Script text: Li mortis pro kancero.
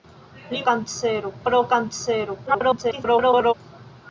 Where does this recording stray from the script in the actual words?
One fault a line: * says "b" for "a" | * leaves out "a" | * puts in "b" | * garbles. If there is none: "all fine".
* says "kancero" for "mortis"
* garbles